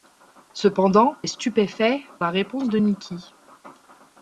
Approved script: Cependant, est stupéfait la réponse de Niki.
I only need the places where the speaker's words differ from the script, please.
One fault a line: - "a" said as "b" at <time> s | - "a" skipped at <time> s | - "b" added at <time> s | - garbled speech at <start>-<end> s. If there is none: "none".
none